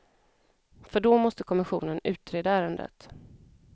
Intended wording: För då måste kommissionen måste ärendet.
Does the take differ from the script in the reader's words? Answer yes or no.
yes